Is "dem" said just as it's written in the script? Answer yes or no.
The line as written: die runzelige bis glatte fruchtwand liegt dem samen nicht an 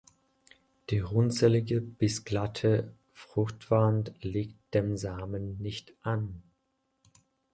yes